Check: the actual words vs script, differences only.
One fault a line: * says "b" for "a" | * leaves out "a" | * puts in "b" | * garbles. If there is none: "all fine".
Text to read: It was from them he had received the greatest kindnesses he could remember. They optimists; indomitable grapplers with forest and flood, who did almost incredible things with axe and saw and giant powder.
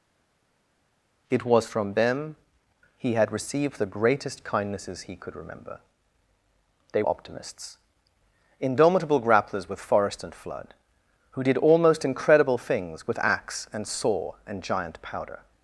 all fine